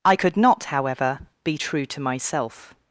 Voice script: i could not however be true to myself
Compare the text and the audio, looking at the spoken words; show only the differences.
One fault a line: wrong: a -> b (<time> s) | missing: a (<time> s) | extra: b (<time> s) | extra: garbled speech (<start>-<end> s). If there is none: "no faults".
no faults